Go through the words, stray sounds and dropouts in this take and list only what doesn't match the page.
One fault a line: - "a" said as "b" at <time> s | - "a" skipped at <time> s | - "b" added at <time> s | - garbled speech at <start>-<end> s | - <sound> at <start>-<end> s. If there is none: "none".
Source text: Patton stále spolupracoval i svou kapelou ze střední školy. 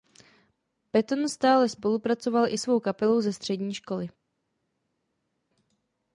none